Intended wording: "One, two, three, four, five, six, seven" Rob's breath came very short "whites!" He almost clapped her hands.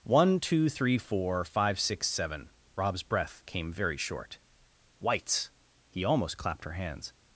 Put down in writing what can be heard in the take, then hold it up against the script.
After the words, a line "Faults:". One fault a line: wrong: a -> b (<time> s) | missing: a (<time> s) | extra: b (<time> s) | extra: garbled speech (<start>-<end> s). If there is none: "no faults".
"One, two, three, four, five, six, seven" Rob's breath came very short "whites!" He almost clapped her hands.
Faults:
no faults